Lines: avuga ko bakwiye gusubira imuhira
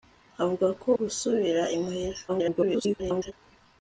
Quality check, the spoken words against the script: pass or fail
fail